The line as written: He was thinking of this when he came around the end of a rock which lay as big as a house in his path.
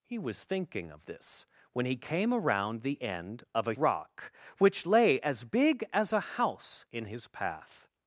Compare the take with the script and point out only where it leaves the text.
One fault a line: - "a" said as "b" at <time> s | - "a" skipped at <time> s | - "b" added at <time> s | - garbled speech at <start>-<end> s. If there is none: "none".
none